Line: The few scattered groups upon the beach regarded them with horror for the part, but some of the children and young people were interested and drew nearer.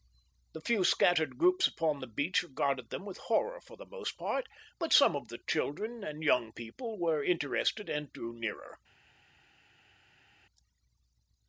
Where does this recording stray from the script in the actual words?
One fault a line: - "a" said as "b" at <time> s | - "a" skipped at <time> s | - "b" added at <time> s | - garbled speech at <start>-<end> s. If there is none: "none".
- "most" added at 3.9 s